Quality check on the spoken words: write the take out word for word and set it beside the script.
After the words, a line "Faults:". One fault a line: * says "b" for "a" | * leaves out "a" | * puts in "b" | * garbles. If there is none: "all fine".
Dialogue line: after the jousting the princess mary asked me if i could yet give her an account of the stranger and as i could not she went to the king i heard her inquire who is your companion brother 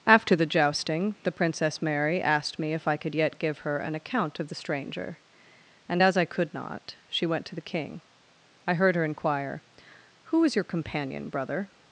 after the jousting the princess mary asked me if i could yet give her an account of the stranger and as i could not she went to the king i heard her inquire who is your companion brother
Faults:
all fine